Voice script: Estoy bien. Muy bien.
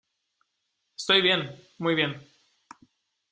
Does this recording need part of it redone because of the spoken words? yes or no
no